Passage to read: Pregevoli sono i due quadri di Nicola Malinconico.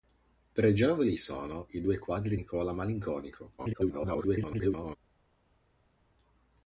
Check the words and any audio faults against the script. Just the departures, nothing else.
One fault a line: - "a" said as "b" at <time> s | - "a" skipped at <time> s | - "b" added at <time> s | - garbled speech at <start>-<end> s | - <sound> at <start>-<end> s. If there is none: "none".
- "di" skipped at 2.4 s
- garbled speech at 3.6-5.0 s